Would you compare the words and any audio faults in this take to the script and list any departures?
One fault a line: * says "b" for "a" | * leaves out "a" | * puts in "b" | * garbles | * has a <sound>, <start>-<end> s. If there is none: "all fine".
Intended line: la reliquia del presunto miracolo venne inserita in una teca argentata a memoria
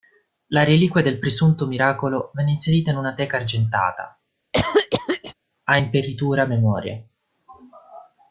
* has a cough, 4.5-5.3 s
* puts in "imperitura"